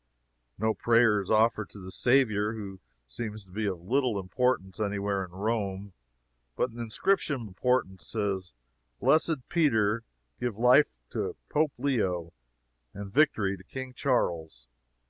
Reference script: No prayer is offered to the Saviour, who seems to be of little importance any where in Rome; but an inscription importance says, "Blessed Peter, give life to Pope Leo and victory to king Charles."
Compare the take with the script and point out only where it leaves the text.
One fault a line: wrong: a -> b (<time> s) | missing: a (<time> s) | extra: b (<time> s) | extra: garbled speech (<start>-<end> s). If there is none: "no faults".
no faults